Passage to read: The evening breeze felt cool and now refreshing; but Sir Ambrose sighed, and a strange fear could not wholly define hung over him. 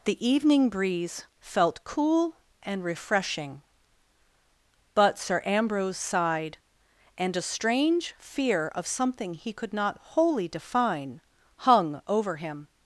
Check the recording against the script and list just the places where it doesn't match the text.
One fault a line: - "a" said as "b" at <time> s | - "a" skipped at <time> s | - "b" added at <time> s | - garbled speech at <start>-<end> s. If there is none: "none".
- "now" skipped at 2.8 s
- "of something he" added at 8.7 s